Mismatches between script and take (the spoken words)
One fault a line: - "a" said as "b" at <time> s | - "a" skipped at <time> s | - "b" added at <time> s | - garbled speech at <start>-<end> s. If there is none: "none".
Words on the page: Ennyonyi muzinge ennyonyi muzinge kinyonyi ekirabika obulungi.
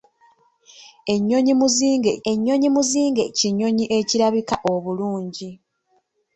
none